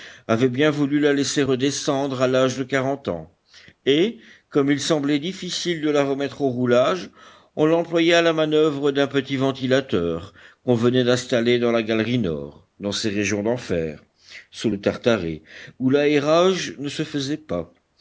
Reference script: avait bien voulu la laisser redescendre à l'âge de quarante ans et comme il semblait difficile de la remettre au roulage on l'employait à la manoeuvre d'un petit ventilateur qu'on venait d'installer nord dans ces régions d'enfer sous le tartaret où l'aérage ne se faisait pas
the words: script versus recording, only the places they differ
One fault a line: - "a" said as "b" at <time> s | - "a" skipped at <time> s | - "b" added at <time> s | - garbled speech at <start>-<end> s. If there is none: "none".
- "dans la galerie" added at 11.6 s